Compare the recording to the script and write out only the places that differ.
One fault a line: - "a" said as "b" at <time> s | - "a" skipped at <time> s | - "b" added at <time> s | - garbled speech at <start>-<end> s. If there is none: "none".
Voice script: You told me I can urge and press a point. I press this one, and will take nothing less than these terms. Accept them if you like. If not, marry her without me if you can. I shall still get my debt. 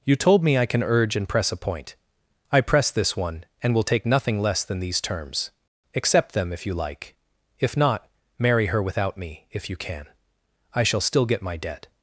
none